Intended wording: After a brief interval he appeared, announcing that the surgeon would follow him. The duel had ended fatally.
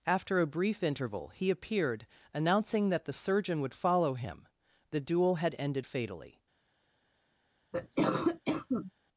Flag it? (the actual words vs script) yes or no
no